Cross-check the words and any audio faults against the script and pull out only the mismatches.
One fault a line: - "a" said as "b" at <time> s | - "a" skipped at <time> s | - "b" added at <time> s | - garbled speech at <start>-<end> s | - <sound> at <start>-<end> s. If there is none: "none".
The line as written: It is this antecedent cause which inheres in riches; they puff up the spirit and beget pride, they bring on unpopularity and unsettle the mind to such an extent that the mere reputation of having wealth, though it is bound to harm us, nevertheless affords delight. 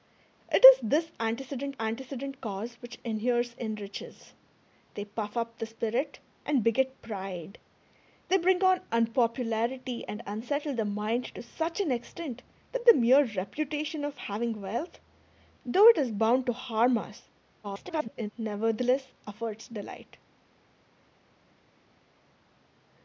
- "antecedent" added at 1.8 s
- garbled speech at 17.6-18.3 s